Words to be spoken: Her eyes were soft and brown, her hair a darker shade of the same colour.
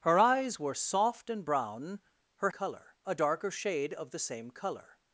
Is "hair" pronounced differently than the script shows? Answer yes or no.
yes